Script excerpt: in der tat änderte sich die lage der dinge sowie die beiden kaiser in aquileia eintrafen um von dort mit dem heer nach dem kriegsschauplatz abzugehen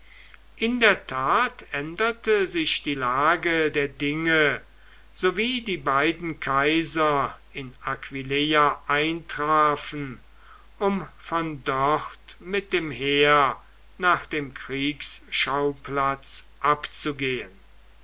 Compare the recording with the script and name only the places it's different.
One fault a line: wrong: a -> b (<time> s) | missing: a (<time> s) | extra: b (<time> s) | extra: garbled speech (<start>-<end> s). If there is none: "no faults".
no faults